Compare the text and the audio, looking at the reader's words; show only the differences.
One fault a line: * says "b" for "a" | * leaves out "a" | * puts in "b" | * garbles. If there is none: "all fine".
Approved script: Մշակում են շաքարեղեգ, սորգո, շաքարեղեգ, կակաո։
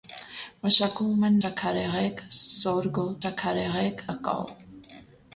all fine